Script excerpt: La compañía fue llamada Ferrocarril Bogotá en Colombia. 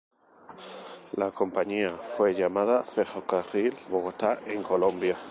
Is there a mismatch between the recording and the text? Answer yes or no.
no